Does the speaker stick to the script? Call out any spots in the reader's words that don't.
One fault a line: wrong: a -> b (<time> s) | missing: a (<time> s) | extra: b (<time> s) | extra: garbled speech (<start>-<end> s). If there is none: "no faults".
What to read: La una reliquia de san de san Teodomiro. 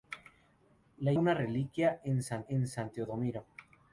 no faults